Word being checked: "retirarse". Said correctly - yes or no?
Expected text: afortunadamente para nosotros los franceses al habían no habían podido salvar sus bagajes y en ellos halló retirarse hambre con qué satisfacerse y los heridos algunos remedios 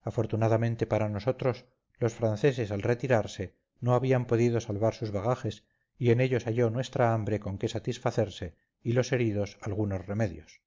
no